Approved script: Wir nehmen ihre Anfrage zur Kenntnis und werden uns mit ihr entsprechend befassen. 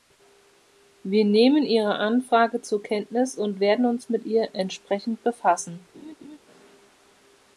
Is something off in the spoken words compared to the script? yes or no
no